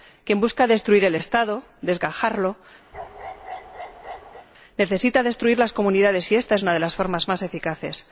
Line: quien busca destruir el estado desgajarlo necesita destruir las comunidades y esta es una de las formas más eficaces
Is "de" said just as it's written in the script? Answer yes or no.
yes